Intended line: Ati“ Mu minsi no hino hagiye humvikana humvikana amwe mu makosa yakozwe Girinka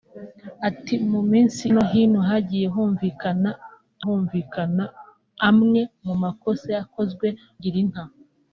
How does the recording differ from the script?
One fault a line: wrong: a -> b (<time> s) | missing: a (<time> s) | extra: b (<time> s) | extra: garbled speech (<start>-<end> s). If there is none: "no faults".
no faults